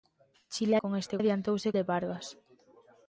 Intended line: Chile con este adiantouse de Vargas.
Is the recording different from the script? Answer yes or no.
no